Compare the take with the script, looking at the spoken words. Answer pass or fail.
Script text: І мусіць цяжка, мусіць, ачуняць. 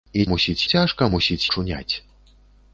pass